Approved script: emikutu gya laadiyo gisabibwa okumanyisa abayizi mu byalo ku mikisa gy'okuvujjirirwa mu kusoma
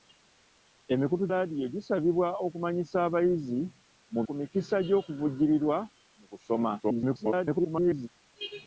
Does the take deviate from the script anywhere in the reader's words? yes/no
yes